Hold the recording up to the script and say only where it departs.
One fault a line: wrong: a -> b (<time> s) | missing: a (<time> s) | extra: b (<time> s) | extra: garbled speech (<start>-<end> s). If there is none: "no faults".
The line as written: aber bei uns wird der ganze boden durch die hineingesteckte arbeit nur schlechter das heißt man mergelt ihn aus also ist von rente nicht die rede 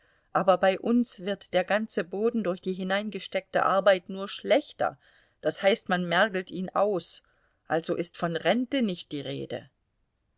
no faults